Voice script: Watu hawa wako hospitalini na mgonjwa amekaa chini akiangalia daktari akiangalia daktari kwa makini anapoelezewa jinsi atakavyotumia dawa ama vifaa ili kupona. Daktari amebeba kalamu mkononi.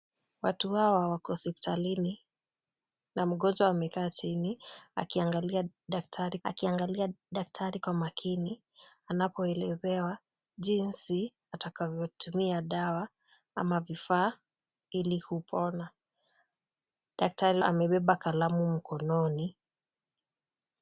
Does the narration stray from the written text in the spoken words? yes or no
no